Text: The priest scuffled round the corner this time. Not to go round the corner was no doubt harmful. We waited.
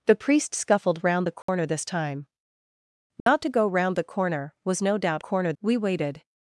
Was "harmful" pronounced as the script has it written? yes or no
no